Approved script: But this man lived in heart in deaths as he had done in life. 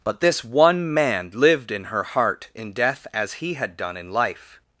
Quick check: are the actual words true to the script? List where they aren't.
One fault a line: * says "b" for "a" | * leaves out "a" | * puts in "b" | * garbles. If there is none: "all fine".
* puts in "one"
* puts in "her"
* says "death" for "deaths"